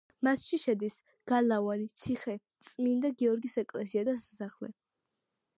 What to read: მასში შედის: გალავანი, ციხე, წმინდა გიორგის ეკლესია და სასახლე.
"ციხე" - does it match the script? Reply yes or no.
yes